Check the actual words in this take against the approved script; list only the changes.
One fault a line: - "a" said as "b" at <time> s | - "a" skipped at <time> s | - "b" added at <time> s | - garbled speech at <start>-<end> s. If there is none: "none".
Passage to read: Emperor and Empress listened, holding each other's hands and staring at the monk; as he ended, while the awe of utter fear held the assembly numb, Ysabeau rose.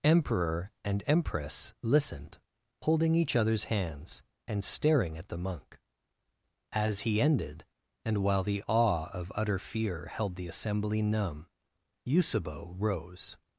- "and" added at 8.1 s